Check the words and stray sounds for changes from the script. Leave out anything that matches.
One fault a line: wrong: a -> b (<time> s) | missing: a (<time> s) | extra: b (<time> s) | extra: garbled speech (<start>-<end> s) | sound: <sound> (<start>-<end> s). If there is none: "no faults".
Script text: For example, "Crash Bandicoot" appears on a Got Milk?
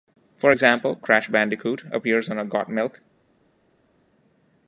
no faults